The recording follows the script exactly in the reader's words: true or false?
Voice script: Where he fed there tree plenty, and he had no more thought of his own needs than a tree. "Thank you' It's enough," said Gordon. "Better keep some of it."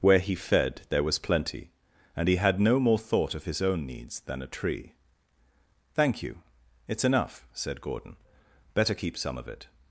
false